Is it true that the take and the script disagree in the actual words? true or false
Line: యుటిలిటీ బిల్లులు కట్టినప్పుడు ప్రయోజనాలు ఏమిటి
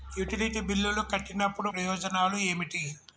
false